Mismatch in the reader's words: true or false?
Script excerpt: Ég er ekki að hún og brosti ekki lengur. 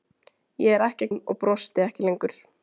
false